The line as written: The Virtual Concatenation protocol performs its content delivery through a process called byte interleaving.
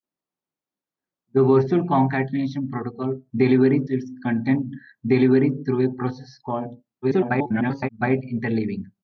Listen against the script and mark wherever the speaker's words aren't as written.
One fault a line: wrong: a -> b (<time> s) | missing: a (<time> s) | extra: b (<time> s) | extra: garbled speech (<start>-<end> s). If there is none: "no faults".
wrong: performs -> delivery (3.3 s)
extra: garbled speech (7.0-7.9 s)